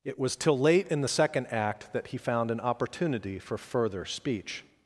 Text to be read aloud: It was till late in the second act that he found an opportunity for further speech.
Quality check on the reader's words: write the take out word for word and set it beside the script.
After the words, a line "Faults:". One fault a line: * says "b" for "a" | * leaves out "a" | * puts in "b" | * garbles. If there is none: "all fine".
It was till late in the second act that he found an opportunity for further speech.
Faults:
all fine